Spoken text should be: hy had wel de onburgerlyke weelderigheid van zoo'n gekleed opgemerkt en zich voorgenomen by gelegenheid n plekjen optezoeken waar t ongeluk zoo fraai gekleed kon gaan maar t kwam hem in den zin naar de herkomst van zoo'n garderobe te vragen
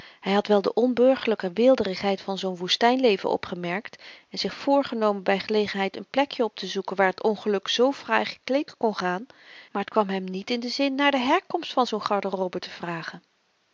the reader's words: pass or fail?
fail